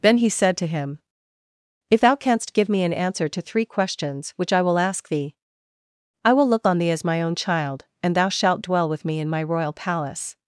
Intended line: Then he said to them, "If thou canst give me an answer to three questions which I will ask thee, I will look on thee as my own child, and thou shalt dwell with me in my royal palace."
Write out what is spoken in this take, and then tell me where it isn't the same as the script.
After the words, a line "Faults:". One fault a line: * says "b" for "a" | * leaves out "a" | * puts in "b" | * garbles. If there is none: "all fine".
Then he said to him, "If thou canst give me an answer to three questions which I will ask thee, I will look on thee as my own child, and thou shalt dwell with me in my royal palace."
Faults:
* says "him" for "them"